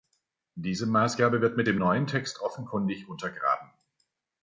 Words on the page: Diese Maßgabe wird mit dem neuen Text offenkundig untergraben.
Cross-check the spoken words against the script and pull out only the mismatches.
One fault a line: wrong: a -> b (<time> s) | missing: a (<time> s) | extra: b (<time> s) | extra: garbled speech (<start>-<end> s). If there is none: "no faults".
no faults